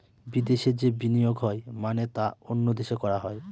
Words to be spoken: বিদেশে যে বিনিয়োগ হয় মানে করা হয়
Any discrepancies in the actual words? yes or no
yes